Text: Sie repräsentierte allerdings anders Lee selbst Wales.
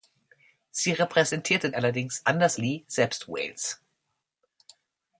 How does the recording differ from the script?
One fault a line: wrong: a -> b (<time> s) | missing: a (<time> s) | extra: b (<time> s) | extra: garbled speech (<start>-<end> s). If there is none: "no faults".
no faults